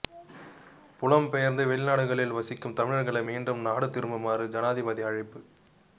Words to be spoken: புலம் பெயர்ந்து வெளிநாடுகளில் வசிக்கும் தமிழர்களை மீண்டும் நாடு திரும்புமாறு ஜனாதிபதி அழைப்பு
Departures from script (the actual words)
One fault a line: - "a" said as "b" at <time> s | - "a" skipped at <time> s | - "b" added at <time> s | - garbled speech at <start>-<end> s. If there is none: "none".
none